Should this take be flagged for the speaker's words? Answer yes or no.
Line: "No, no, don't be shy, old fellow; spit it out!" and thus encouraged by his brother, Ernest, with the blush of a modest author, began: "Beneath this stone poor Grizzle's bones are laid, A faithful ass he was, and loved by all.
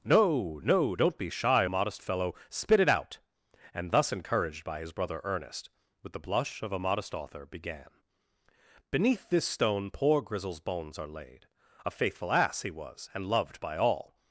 yes